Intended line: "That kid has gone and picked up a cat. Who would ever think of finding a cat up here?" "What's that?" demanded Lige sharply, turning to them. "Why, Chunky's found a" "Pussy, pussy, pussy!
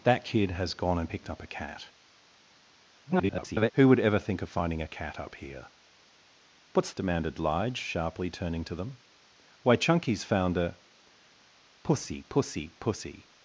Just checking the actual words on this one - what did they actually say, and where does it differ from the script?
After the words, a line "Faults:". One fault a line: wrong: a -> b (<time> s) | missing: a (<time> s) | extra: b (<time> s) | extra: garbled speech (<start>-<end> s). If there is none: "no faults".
"That kid has gone and picked up a cat. [garbled] Who would ever think of finding a cat up here?" "What's?" demanded Lige sharply, turning to them. "Why, Chunky's found a" "Pussy, pussy, pussy!
Faults:
extra: garbled speech (3.1-3.7 s)
missing: that (6.9 s)